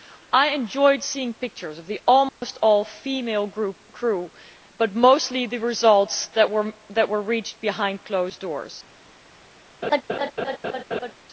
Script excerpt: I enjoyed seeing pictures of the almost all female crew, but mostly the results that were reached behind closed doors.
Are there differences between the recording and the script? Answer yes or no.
no